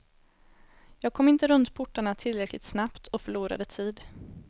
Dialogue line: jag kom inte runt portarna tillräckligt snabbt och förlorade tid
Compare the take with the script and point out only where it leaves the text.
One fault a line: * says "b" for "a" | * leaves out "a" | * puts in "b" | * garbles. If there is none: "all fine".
all fine